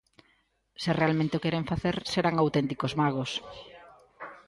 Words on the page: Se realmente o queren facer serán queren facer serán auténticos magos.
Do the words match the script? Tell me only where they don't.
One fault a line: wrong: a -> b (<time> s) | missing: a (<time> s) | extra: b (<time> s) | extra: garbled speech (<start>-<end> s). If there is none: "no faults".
missing: queren facer serán (2.4 s)